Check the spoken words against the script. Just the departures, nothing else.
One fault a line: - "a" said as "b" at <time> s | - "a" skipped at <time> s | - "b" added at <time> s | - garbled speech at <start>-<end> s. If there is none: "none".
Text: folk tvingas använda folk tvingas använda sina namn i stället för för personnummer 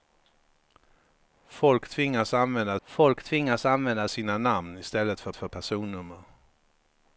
none